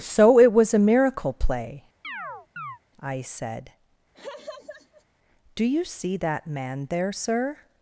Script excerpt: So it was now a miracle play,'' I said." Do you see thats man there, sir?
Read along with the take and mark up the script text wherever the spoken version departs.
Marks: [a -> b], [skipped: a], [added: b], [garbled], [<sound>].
So it was [skipped: now] a miracle play,'' [chirp] I said." [laugh] Do you see [thats -> that] man there, sir?